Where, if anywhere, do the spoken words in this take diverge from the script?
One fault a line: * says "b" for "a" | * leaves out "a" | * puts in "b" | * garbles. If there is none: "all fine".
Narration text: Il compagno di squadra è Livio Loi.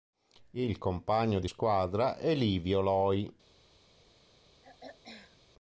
all fine